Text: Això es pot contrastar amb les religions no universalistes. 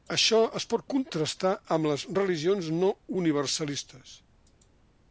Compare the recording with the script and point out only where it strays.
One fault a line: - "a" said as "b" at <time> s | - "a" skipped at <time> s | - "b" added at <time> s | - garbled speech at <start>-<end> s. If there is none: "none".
none